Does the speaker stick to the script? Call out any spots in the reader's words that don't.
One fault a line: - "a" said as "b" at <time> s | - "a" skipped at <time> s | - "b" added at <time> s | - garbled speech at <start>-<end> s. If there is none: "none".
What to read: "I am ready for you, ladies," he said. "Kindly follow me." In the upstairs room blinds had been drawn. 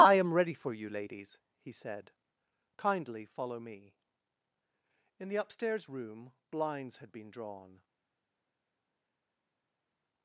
none